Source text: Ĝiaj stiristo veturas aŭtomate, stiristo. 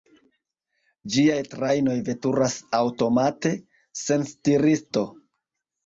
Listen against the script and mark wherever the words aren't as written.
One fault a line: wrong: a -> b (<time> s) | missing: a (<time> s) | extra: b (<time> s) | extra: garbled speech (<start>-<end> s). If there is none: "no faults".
wrong: stiristo -> trajnoj (1.5 s)
extra: sen (4.0 s)